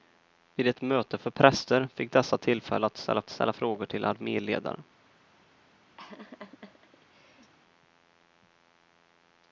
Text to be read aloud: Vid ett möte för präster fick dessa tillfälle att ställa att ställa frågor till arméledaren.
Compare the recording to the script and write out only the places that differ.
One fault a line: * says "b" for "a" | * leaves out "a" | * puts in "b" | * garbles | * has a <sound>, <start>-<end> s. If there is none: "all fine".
* has a laugh, 6.0-7.5 s